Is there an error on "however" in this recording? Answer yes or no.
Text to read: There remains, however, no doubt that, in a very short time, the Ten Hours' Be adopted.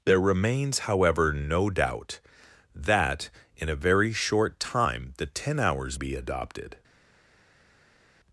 no